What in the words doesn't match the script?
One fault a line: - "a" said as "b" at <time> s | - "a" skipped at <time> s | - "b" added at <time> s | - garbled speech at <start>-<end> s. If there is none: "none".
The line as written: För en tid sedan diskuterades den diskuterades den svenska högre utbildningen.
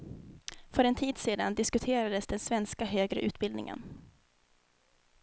- "diskuterades den" skipped at 2.4 s